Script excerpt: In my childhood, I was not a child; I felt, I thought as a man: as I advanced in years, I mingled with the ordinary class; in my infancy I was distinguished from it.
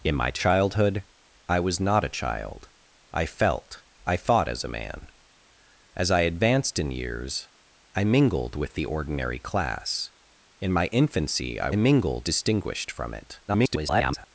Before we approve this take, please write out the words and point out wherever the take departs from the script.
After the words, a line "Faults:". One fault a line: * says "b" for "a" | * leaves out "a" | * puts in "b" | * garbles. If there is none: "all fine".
In my childhood, I was not a child; I felt, I thought as a man: as I advanced in years, I mingled with the ordinary class; in my infancy I mingled distinguished from it. [garbled]
Faults:
* says "mingled" for "was"
* garbles